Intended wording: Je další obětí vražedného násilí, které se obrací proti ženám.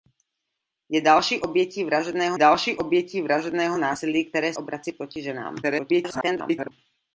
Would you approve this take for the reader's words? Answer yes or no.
no